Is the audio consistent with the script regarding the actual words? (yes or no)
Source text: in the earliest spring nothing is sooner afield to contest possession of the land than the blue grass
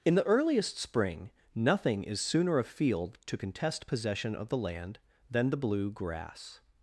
yes